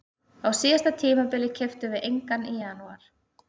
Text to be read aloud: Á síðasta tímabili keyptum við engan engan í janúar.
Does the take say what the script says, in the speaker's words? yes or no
no